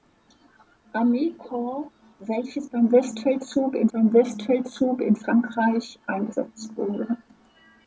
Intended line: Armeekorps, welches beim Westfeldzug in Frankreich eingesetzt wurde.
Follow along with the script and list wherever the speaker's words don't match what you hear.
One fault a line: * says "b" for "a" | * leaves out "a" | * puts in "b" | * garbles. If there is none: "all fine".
* puts in "beim Westfeldzug in"